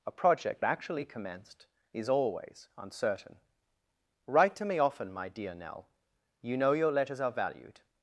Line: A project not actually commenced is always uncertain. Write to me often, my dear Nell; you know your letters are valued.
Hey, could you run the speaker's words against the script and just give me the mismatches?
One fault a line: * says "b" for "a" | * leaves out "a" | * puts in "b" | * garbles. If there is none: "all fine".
* leaves out "not"